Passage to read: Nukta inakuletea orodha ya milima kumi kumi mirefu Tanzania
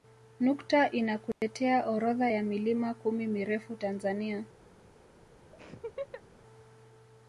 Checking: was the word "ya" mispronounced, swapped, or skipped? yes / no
no